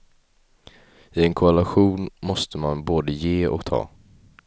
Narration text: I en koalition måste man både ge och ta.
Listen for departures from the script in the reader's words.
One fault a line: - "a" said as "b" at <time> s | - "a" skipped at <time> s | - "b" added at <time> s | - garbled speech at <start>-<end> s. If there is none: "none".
none